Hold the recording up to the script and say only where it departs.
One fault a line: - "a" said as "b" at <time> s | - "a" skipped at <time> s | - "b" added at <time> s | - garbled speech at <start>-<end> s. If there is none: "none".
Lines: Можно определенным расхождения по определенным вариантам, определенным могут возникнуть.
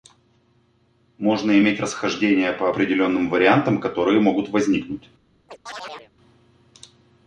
- "определенным" said as "иметь" at 1.6 s
- "определенным" said as "которые" at 3.8 s